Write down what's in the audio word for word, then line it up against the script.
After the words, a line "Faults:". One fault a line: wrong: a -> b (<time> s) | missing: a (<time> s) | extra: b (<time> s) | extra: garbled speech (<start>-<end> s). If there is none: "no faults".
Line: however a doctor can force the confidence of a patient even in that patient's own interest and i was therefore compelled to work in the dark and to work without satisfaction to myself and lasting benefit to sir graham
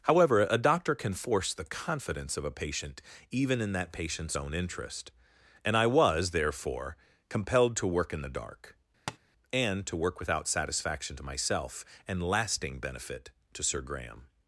however a doctor can force the confidence of a patient even in that patient's own interest and i was therefore compelled to work in the dark and to work without satisfaction to myself and lasting benefit to sir graham
Faults:
no faults